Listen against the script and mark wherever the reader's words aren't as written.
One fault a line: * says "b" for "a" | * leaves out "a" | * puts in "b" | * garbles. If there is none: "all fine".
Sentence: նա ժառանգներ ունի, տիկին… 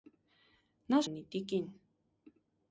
* leaves out "ժառանգներ"